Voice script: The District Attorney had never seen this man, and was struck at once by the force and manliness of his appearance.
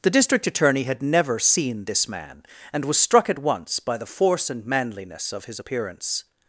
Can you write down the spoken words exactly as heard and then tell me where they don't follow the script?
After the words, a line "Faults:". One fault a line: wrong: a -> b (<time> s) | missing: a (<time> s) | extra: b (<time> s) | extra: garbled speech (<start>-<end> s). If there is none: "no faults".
The District Attorney had never seen this man, and was struck at once by the force and manliness of his appearance.
Faults:
no faults